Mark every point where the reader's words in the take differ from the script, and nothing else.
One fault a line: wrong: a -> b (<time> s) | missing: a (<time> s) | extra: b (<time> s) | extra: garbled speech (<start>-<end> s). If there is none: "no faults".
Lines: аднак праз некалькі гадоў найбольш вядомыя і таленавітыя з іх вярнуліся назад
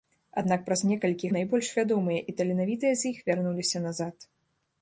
missing: гадоў (1.3 s)